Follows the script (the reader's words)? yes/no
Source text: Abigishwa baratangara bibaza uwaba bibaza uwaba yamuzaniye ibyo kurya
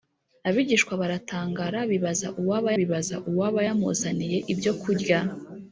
yes